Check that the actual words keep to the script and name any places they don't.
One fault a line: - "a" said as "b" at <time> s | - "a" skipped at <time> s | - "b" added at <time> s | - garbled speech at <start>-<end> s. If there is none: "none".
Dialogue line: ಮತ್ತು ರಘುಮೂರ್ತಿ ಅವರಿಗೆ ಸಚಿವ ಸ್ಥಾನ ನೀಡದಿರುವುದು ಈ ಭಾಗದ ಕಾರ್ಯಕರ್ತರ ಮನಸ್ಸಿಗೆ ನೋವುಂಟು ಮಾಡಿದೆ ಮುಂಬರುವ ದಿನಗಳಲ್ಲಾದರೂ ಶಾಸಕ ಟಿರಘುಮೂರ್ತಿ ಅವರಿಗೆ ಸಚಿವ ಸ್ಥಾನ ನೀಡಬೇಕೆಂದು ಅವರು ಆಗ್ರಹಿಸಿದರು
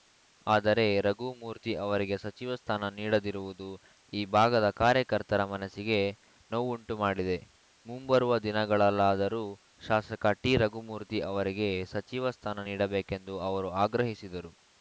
- "ಮತ್ತು" said as "ಆದರೆ" at 0.5 s